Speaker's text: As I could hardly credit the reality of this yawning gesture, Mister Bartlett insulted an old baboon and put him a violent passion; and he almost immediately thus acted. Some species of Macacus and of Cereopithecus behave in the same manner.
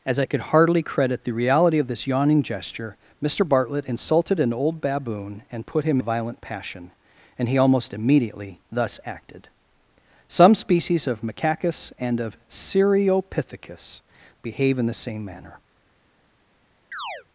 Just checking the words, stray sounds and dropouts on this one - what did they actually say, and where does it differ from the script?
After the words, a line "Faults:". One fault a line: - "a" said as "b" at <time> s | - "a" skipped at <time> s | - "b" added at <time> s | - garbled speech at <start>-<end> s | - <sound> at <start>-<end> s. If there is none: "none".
As I could hardly credit the reality of this yawning gesture, Mister Bartlett insulted an old baboon and put him a violent passion; and he almost immediately thus acted. Some species of Macacus and of Cereopithecus behave in the same manner.
Faults:
- chirp at 16.9-17.3 s